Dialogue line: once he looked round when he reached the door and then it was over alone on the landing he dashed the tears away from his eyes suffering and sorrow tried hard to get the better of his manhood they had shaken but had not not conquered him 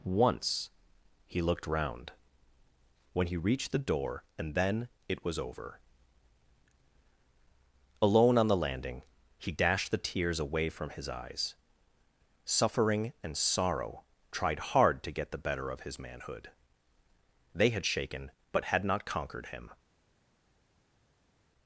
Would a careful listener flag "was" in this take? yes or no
no